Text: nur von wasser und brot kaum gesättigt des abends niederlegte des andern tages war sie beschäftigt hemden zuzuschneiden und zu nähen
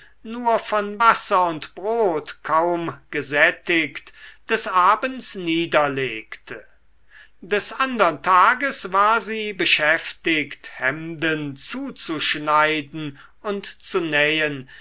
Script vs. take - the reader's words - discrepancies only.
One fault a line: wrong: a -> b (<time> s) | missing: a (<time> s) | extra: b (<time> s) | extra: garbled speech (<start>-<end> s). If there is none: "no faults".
no faults